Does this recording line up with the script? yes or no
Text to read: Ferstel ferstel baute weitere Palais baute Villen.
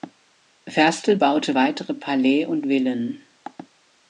no